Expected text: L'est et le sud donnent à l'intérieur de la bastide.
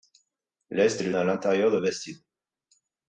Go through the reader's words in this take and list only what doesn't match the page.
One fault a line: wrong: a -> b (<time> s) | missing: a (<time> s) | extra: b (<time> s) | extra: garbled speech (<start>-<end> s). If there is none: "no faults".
missing: sud donnent (1.1 s)
missing: la (1.8 s)